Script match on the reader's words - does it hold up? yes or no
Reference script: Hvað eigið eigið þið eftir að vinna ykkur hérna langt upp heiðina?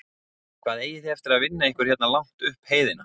no